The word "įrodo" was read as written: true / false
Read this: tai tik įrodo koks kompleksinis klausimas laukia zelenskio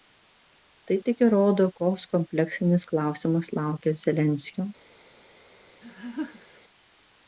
true